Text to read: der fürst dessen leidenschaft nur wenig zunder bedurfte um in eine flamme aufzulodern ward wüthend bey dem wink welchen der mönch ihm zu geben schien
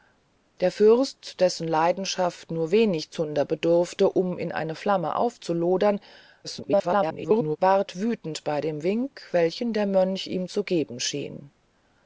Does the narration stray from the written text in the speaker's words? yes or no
yes